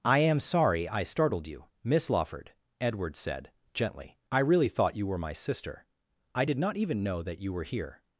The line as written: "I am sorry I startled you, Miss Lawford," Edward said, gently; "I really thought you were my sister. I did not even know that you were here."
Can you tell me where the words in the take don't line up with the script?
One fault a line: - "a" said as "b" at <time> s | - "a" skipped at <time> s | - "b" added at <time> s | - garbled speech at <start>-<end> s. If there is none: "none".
none